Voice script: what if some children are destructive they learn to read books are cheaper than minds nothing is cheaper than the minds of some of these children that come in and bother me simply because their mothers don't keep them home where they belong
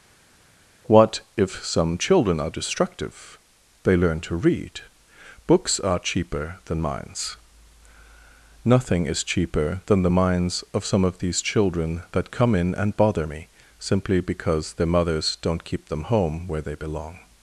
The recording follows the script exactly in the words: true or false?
true